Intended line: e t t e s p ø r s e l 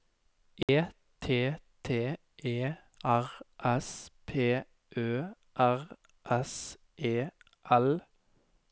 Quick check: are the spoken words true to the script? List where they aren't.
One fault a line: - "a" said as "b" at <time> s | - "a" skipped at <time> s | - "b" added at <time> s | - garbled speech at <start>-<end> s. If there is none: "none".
- "r" added at 3.0 s